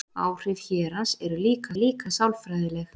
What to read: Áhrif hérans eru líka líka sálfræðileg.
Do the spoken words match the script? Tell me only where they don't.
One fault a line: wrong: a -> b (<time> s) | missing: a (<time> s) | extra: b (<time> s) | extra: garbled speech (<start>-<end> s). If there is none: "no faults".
no faults